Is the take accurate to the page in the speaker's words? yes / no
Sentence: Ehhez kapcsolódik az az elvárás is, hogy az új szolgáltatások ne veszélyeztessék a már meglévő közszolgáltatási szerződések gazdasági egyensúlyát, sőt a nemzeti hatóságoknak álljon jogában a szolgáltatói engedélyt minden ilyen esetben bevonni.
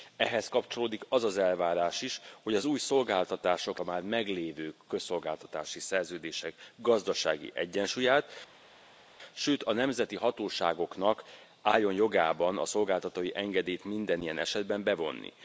no